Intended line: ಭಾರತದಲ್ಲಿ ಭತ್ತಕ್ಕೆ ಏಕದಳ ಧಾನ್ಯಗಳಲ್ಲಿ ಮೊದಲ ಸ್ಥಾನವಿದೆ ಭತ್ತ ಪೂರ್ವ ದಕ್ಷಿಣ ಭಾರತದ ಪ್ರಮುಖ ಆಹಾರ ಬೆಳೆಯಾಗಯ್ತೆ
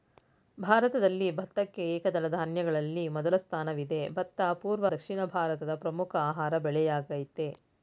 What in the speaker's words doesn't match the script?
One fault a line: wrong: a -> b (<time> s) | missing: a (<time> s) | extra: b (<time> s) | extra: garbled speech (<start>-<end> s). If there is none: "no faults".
no faults